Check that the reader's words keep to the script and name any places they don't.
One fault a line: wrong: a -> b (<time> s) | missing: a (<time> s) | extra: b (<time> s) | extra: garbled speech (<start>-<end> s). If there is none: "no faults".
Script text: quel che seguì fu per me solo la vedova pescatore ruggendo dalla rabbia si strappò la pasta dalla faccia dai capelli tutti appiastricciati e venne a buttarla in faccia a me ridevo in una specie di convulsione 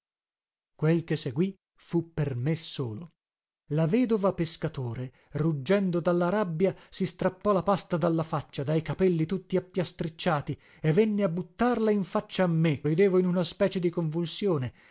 no faults